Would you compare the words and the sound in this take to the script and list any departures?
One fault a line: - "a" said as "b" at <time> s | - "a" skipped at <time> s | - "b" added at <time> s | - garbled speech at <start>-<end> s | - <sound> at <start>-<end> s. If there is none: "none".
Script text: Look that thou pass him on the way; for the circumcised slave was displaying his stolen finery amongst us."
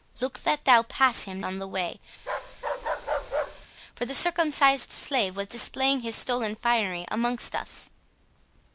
- bark at 2.2-3.7 s